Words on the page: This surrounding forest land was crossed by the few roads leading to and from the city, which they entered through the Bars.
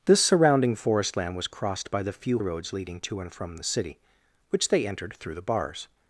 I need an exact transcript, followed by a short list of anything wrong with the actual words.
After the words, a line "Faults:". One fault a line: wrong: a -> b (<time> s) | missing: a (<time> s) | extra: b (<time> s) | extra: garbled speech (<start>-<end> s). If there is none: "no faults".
This surrounding forest land was crossed by the few roads leading to and from the city, which they entered through the Bars.
Faults:
no faults